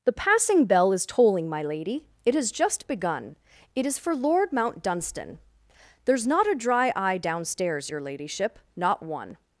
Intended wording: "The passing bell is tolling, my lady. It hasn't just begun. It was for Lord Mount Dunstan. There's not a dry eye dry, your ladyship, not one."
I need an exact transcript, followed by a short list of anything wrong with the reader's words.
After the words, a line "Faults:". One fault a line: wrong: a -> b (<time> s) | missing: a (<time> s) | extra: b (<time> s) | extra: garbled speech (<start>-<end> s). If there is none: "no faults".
"The passing bell is tolling, my lady. It has just begun. It is for Lord Mount Dunstan. There's not a dry eye downstairs, your ladyship, not one."
Faults:
wrong: hasn't -> has (2.3 s)
wrong: was -> is (3.9 s)
wrong: dry -> downstairs (7.2 s)